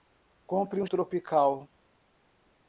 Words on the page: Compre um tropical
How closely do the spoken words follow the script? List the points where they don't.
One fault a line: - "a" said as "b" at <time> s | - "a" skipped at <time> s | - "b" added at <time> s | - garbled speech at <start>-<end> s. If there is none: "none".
none